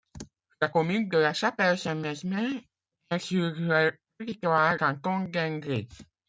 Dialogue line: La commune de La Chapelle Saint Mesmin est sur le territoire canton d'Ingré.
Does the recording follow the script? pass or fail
pass